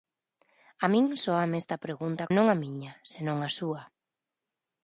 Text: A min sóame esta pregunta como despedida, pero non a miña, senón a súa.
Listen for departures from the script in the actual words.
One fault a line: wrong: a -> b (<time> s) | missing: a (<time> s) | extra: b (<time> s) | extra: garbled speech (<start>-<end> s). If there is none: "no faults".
missing: como despedida pero (2.2 s)